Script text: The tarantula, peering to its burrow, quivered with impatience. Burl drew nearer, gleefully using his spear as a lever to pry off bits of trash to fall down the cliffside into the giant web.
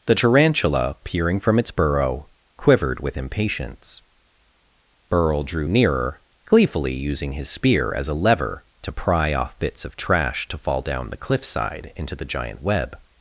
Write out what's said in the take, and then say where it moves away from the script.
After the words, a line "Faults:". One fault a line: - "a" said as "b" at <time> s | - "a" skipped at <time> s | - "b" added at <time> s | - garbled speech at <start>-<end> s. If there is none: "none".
The tarantula, peering from its burrow, quivered with impatience. Burl drew nearer, gleefully using his spear as a lever to pry off bits of trash to fall down the cliffside into the giant web.
Faults:
- "to" said as "from" at 1.4 s